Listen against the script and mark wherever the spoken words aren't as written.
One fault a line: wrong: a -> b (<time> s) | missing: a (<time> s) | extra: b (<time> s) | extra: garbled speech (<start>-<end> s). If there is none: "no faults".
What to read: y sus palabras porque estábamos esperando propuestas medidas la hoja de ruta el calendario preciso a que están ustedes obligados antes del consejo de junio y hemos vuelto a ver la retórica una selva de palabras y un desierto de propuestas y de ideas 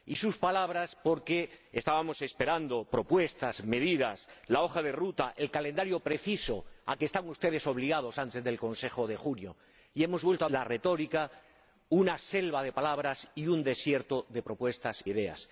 missing: ver (10.5 s)
missing: y (15.1 s)